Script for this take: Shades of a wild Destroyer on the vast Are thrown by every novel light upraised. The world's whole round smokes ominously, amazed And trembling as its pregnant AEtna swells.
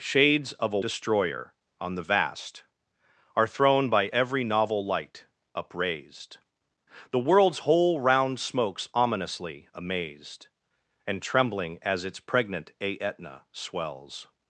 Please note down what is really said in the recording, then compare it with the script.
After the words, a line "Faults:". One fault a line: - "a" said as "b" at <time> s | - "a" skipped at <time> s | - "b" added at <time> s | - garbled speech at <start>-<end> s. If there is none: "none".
Shades of a Destroyer on the vast Are thrown by every novel light upraised. The world's whole round smokes ominously, amazed And trembling as its pregnant AEtna swells.
Faults:
- "wild" skipped at 0.8 s